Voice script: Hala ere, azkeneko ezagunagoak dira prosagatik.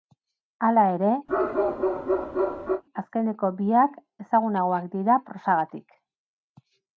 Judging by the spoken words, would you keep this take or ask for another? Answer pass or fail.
fail